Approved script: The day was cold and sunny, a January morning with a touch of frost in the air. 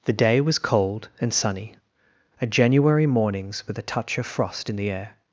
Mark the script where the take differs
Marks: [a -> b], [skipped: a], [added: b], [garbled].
The day was cold and sunny, a January [morning -> mornings] with a touch of frost in the air.